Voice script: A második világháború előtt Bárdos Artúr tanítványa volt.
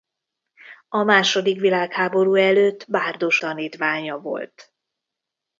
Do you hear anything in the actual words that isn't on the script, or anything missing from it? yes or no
yes